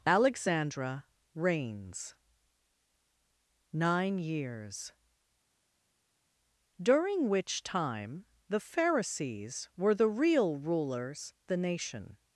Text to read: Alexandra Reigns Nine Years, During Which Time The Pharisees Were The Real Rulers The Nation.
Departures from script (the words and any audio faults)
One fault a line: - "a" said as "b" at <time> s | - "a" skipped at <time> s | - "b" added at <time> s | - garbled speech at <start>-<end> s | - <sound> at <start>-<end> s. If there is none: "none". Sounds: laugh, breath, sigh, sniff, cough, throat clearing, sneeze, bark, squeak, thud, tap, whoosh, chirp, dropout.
none